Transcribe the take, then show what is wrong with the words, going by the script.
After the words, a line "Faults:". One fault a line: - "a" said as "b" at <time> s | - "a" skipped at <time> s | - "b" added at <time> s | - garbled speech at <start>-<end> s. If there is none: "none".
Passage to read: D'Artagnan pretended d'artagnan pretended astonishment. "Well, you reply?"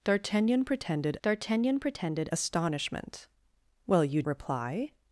D'Artagnan pretended d'artagnan pretended astonishment. "Well, you reply?"
Faults:
none